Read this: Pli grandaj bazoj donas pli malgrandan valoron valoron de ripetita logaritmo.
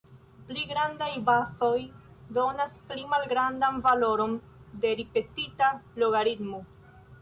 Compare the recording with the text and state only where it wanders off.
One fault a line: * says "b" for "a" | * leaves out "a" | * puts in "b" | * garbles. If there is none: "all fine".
* leaves out "valoron"